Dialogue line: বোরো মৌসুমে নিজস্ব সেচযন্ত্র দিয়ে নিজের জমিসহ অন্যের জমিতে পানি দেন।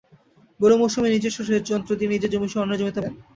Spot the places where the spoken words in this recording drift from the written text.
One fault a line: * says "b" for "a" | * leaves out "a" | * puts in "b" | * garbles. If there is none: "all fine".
* leaves out "পানি"